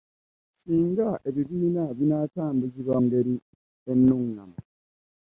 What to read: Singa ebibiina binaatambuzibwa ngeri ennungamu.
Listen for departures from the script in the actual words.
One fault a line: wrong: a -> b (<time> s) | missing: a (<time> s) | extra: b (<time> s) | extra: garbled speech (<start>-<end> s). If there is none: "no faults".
no faults